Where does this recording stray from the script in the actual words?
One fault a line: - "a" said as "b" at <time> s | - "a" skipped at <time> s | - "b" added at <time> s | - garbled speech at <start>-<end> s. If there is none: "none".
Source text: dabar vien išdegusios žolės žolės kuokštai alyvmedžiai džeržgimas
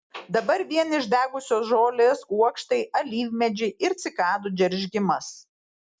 - "žolės" skipped at 2.2 s
- "ir cikadų" added at 3.9 s